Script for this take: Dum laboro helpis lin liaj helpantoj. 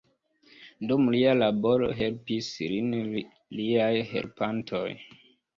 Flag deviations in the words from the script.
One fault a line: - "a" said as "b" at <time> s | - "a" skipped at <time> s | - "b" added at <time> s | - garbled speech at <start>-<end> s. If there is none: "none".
- "lia" added at 1.1 s